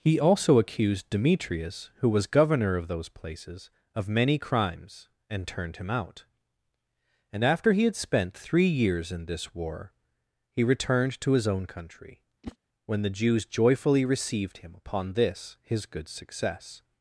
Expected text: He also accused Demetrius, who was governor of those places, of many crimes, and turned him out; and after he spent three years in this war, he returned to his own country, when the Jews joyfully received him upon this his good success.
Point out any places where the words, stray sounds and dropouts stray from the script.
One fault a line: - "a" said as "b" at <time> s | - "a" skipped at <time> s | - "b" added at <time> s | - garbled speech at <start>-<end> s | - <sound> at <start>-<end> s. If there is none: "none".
- "had" added at 7.8 s
- whoosh at 12.4-12.6 s